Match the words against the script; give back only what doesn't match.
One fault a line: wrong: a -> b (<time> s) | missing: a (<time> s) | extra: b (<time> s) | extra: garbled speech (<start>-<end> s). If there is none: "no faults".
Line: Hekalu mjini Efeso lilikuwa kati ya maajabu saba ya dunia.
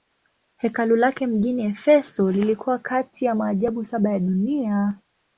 extra: lake (0.9 s)